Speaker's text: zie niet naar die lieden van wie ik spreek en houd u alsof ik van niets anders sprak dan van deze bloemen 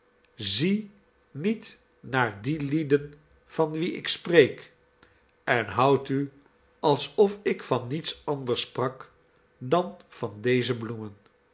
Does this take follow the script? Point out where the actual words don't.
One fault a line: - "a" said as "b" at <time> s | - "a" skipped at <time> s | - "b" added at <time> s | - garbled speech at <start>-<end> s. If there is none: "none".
none